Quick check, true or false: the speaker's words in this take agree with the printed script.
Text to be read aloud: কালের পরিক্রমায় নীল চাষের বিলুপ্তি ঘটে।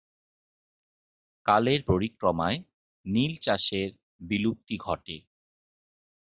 true